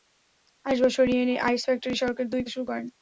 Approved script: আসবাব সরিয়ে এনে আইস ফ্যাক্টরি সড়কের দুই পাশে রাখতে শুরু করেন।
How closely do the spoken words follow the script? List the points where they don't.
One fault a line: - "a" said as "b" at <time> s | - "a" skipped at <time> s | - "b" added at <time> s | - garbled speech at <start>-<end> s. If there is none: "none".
- "পাশে রাখতে" skipped at 2.4 s